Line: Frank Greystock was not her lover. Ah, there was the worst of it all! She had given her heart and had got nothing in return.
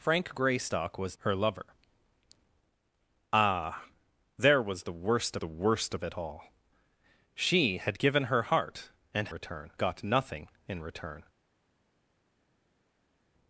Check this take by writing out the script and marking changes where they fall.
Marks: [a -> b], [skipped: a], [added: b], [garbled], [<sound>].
Frank Greystock was [skipped: not] her lover. Ah, there was the worst [added: the worst] of it all! She had given her heart and [had -> return] got nothing in return.